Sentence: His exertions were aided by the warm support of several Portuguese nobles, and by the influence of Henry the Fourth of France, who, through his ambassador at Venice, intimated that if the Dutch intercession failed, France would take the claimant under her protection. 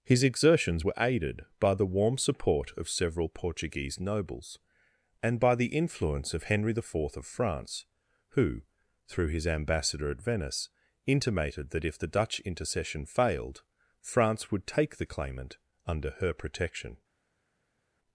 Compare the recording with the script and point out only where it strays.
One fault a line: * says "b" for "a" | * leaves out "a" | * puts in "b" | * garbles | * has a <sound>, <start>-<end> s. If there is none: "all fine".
all fine